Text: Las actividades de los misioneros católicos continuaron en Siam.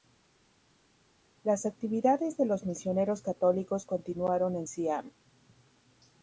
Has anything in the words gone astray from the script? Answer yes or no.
no